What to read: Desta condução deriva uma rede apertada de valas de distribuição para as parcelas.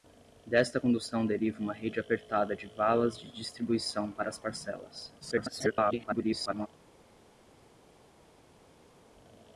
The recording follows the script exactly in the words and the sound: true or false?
false